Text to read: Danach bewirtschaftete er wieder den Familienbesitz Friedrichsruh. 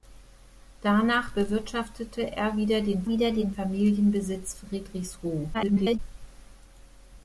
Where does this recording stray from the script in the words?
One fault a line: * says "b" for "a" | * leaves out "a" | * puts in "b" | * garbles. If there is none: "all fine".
* puts in "wieder den"
* garbles